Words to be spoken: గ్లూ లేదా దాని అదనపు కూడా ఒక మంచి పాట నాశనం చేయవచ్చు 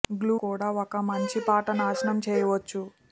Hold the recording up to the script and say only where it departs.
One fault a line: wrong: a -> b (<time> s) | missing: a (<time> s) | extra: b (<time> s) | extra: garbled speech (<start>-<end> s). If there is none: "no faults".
missing: లేదా దాని అదనపు (0.3 s)